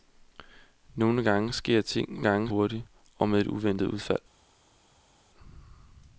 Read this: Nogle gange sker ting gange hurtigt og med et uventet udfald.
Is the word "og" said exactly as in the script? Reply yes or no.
yes